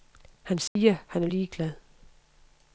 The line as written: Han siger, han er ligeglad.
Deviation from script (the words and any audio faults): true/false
true